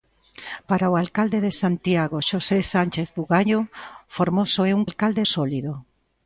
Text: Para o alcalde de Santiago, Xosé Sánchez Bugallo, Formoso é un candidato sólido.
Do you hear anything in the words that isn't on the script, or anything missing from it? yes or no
yes